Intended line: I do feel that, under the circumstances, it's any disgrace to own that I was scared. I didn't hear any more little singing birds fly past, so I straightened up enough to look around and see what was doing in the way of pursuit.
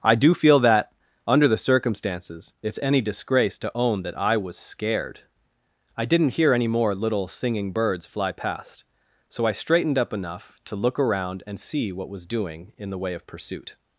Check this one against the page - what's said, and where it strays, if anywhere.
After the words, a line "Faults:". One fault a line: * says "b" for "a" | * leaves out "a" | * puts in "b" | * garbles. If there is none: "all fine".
I do feel that, under the circumstances, it's any disgrace to own that I was scared. I didn't hear any more little singing birds fly past, so I straightened up enough to look around and see what was doing in the way of pursuit.
Faults:
all fine